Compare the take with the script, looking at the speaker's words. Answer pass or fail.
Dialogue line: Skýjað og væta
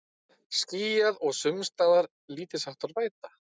fail